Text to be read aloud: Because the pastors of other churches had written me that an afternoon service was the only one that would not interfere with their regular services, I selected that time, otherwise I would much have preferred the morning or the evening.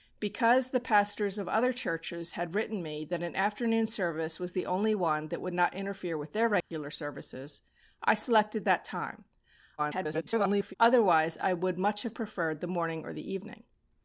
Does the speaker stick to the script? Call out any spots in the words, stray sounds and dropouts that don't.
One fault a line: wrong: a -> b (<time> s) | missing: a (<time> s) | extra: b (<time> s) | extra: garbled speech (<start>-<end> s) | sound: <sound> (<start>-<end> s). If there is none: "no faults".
sound: dropout (6.6-6.7 s)
extra: garbled speech (9.8-10.7 s)